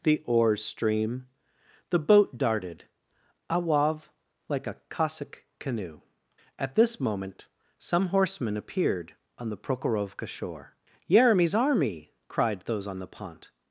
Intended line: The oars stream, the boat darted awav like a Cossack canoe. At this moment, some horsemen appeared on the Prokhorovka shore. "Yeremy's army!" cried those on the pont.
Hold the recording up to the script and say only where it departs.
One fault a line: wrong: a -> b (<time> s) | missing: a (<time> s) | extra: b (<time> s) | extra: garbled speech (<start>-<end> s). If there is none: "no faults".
no faults